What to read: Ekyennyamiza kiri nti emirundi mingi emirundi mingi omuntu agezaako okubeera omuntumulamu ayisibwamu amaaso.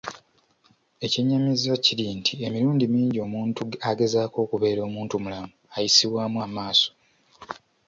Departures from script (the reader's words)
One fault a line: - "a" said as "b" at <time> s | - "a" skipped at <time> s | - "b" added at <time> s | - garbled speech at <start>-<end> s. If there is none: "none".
- "emirundi mingi" skipped at 3.2 s